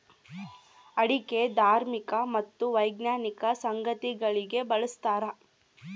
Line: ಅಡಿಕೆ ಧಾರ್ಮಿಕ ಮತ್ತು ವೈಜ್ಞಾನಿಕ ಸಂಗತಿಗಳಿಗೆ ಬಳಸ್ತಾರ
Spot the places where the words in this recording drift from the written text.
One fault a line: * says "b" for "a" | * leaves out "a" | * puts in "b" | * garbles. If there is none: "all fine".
all fine